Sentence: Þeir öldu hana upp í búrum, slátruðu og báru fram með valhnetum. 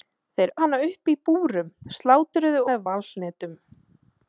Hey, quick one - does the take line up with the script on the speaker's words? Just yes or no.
no